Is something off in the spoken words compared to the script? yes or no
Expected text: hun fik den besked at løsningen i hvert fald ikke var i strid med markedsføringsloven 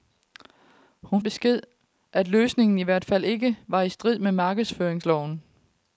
yes